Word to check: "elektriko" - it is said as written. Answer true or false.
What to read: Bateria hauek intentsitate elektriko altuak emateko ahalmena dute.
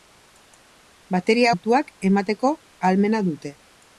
false